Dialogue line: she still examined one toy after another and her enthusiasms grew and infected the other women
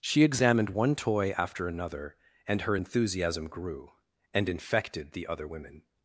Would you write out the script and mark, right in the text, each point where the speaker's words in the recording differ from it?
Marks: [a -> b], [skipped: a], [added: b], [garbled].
she [skipped: still] examined one toy after another and her [enthusiasms -> enthusiasm] grew and infected the other women